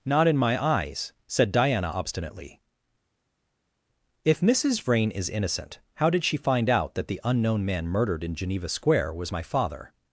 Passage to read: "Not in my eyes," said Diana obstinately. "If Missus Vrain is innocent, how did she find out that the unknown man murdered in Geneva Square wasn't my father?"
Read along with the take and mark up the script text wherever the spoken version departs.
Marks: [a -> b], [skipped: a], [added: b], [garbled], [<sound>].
"Not in my eyes," said Diana obstinately. "If Missus Vrain is innocent, how did she find out that the unknown man murdered in Geneva Square [wasn't -> was] my father?"